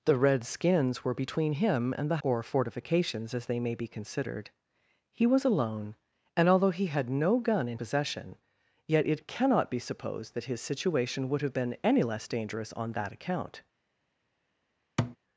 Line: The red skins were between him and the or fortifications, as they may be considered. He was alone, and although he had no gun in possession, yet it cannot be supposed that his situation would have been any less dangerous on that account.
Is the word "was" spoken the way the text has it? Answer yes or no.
yes